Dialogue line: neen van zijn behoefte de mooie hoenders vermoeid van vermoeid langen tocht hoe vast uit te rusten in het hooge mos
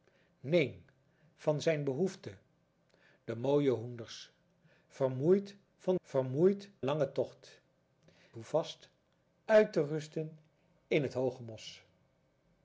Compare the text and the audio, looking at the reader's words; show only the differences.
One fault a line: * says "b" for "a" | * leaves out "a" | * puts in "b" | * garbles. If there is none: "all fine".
all fine